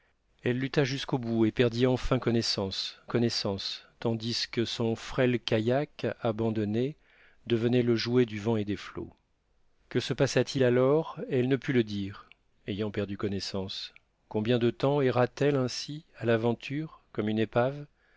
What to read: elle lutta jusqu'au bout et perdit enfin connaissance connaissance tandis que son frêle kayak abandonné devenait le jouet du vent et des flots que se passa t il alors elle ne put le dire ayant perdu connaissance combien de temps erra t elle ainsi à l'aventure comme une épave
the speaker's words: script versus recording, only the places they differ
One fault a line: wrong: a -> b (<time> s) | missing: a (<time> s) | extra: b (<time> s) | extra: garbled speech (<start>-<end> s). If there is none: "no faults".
no faults